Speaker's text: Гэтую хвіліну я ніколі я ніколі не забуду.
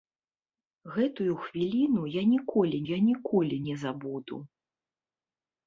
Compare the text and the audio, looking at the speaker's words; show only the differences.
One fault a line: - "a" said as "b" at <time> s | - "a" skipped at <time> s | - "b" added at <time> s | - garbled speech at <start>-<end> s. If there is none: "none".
none